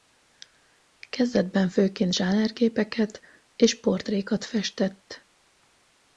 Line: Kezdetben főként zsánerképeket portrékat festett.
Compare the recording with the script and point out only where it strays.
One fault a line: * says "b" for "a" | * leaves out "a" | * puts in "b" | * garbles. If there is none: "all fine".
* puts in "és"